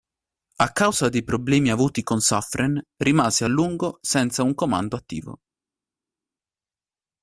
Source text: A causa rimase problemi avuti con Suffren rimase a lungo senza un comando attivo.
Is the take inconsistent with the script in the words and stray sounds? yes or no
yes